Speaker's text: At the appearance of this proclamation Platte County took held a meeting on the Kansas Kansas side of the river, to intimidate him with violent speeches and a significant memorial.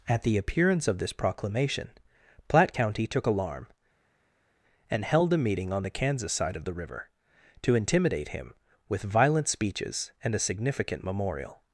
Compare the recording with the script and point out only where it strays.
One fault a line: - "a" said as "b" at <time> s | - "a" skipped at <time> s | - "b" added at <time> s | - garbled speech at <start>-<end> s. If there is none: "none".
- "alarm and" added at 3.3 s
- "Kansas" skipped at 6.3 s